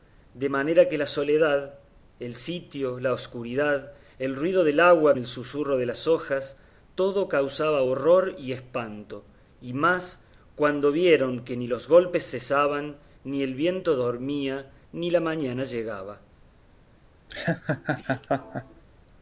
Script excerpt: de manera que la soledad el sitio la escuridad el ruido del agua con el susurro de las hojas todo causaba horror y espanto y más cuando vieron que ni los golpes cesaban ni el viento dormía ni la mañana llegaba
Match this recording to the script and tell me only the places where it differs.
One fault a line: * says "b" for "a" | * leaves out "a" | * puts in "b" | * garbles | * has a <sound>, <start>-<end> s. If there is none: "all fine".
* leaves out "con"
* has a laugh, 17.3-18.8 s